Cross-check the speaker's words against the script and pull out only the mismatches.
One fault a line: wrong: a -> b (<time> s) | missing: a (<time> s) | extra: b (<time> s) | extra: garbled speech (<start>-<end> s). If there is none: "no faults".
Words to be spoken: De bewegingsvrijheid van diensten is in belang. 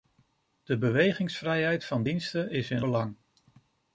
no faults